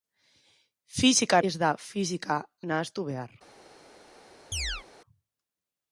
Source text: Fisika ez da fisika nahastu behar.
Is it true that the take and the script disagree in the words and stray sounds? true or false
true